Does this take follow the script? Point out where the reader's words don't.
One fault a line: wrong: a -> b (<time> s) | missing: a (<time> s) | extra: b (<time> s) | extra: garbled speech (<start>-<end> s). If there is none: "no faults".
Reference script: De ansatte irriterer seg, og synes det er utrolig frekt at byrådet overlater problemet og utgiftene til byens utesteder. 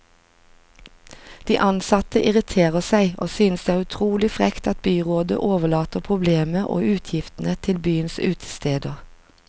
no faults